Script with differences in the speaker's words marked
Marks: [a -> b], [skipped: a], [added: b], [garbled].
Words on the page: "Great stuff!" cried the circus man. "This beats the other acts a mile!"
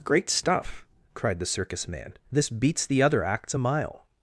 "Great stuff!" cried the circus man. "This beats the other acts a mile!"